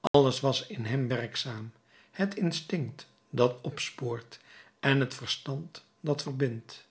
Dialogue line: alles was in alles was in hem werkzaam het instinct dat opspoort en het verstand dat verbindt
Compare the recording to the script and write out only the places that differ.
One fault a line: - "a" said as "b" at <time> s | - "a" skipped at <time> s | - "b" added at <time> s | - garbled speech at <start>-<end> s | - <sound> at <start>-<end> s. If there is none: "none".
- dropout at 0.1-0.1 s
- "alles was in" skipped at 0.8 s